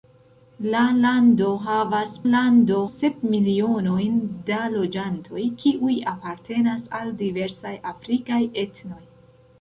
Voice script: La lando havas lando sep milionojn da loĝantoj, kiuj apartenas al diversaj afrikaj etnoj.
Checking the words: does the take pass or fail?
pass